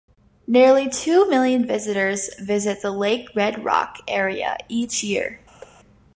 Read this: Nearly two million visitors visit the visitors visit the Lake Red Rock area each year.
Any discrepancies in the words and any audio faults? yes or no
yes